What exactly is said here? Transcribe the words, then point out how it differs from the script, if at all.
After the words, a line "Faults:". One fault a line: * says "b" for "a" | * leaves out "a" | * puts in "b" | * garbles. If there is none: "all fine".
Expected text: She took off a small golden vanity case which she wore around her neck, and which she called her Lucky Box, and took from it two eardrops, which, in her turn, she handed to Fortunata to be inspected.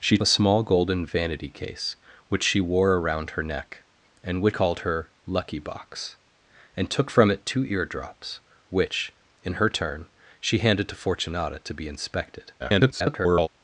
She a small golden vanity case which she wore around her neck, and which called her Lucky Box, and took from it two eardrops, which, in her turn, she handed to Fortunata to be inspected. [garbled]
Faults:
* leaves out "took off"
* leaves out "she"
* garbles